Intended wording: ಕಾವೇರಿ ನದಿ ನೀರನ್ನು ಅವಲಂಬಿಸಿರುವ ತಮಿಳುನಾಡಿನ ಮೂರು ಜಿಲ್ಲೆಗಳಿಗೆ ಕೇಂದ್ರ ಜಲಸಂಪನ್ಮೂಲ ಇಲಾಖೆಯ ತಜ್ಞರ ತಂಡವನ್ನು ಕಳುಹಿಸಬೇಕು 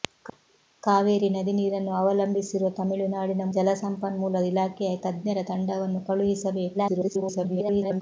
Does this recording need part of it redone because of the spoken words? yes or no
yes